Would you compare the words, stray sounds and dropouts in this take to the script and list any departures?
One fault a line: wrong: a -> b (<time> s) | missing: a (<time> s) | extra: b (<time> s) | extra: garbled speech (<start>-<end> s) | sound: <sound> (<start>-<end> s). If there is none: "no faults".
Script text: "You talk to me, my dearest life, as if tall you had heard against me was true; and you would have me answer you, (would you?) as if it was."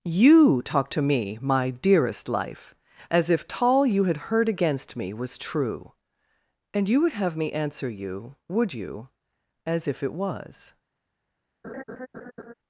sound: laugh (11.6-12.5 s)